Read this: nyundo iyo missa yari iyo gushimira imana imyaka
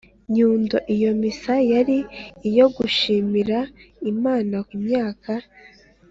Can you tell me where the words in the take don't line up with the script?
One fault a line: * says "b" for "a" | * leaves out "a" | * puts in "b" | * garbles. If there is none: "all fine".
all fine